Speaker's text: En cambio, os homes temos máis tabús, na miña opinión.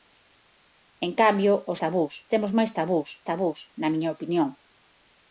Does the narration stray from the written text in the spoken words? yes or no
yes